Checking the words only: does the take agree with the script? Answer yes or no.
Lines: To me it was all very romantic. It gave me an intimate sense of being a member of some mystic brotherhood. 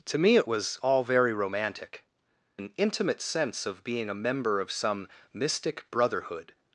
no